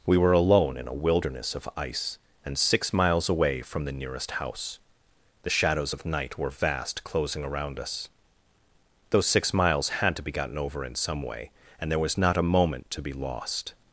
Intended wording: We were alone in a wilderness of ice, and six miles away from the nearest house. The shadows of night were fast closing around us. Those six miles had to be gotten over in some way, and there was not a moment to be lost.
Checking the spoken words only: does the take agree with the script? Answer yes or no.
no